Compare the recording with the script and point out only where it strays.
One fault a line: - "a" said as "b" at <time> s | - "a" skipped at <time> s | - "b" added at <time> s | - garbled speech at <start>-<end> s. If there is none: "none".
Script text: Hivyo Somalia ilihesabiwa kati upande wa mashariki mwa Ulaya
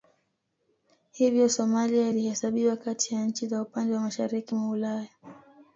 - "ya nchi za" added at 3.1 s